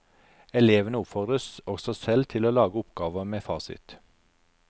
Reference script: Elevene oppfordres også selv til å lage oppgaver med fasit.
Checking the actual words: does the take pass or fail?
pass